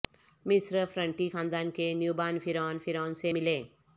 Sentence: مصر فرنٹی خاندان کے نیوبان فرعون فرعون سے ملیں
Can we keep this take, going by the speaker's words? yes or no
yes